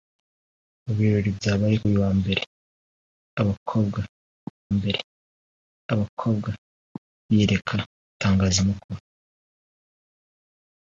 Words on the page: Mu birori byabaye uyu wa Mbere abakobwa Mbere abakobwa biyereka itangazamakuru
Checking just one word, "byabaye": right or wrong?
right